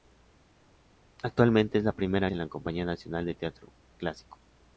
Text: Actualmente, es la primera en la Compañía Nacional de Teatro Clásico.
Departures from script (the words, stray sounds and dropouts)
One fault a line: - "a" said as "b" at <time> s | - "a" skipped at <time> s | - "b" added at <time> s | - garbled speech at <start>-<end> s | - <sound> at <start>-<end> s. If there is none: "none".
none